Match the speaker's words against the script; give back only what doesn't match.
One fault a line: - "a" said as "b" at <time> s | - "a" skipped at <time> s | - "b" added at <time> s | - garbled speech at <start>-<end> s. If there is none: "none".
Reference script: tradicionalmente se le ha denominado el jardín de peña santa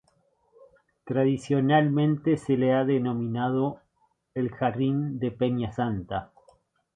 none